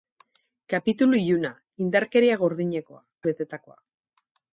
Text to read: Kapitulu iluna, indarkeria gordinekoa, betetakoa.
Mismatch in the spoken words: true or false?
false